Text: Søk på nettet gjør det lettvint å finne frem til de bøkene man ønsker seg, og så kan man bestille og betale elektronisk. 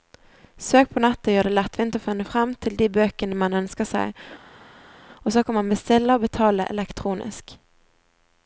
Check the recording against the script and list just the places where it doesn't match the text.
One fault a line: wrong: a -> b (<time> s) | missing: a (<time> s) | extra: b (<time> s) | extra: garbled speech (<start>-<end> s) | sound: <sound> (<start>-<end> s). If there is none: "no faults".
no faults